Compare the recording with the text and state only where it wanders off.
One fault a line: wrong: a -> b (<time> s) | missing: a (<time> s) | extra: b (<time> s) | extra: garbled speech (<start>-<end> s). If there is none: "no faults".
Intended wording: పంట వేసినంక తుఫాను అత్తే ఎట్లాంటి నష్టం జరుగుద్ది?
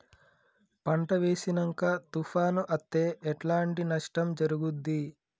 no faults